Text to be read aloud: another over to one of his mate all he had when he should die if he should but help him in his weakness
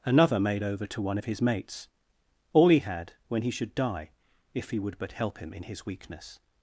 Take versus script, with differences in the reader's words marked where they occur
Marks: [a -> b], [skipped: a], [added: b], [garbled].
another [added: made] over to one of his [mate -> mates] all he had when he should die if he [should -> would] but help him in his weakness